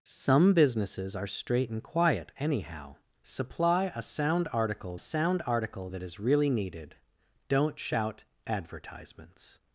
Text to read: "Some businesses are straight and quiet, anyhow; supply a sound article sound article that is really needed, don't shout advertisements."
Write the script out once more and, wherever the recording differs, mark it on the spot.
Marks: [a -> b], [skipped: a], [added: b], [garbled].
"Some businesses are straight and quiet, anyhow; supply a sound article sound article that is really needed, don't shout advertisements."